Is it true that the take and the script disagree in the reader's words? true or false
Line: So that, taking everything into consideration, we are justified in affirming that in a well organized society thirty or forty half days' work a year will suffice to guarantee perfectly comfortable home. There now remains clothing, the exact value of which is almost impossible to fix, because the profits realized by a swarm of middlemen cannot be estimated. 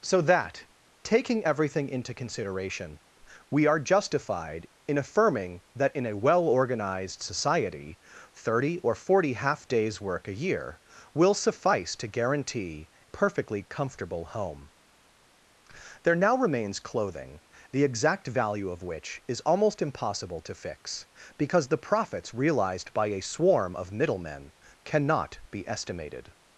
false